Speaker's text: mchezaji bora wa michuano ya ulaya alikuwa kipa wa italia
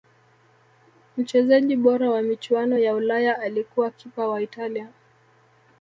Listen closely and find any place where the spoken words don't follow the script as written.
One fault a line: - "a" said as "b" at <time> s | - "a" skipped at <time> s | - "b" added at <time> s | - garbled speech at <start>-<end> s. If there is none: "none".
none